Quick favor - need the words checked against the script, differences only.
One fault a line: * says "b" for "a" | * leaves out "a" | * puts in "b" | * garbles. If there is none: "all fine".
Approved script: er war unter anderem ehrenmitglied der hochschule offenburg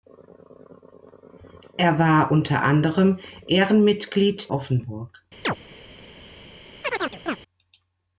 * leaves out "der hochschule"